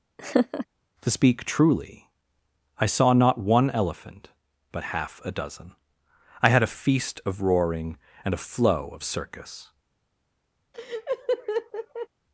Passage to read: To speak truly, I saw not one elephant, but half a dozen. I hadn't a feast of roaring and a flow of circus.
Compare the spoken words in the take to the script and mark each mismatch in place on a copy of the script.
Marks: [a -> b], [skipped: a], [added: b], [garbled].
To speak truly, I saw not one elephant, but half a dozen. I [hadn't -> had] a feast of roaring and a flow of circus.